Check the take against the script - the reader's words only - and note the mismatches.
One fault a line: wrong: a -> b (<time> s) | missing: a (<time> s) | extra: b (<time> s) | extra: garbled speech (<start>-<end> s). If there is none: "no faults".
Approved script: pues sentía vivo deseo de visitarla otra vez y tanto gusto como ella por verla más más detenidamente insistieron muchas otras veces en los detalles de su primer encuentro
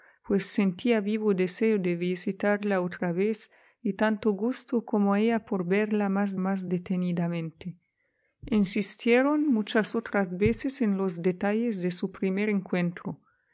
no faults